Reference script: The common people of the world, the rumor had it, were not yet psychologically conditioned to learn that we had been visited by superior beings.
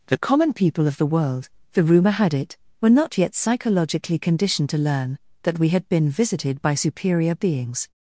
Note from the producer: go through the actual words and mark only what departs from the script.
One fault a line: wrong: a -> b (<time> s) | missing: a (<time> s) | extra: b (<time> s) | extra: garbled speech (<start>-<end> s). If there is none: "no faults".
no faults